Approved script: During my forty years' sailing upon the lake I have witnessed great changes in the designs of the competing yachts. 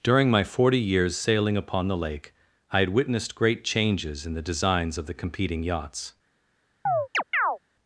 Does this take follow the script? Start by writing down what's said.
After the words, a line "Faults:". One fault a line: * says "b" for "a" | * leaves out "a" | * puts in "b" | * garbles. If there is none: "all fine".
During my forty years' sailing upon the lake I had witnessed great changes in the designs of the competing yachts.
Faults:
* says "had" for "have"